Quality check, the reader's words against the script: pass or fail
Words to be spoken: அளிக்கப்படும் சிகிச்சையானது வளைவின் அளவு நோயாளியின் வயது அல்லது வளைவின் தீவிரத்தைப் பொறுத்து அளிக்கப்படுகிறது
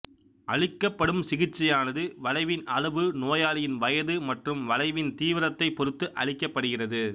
fail